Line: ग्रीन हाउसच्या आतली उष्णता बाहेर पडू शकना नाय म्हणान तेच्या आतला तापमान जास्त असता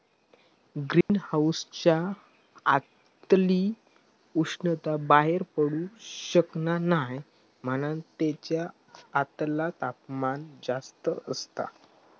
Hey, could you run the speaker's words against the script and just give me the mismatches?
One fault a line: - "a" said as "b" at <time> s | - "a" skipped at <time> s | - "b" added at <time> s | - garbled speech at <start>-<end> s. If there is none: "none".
none